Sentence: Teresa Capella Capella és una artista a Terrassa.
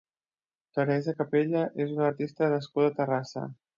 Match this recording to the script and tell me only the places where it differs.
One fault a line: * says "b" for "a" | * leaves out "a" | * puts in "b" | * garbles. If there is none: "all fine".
* leaves out "Capella"
* puts in "nascuda"